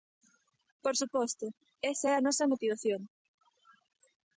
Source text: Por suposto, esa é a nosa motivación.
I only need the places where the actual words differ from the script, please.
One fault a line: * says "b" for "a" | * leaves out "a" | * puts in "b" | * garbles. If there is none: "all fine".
all fine